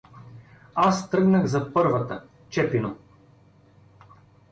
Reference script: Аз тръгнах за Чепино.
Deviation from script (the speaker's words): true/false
true